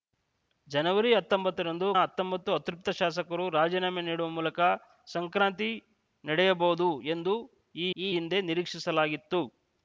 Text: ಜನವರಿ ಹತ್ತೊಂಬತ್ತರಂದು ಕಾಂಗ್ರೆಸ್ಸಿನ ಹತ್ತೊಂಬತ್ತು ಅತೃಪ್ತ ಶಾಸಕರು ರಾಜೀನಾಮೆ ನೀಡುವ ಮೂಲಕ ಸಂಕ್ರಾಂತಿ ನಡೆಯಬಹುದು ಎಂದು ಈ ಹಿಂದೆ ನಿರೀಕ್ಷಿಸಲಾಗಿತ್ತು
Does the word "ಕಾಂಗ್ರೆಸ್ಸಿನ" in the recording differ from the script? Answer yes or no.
yes